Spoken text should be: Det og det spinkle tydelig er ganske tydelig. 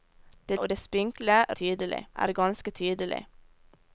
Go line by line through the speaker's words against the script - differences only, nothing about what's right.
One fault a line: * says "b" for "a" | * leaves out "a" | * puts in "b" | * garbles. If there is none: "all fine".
all fine